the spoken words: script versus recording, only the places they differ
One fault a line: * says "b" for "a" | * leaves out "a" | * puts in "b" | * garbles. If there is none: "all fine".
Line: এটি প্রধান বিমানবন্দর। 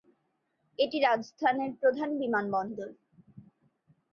* puts in "রাজস্থানের"